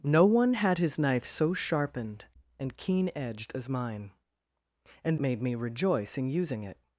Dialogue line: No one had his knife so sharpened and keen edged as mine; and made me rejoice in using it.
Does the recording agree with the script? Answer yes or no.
yes